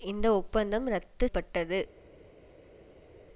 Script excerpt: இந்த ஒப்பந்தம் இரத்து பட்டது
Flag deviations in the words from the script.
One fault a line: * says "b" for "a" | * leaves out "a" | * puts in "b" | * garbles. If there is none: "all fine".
all fine